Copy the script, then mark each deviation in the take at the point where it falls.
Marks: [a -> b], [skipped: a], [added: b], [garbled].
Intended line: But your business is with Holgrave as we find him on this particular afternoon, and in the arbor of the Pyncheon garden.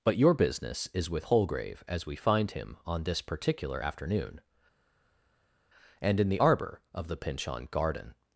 But your business is with Holgrave as we find him on this particular afternoon, and in the arbor of the Pyncheon garden.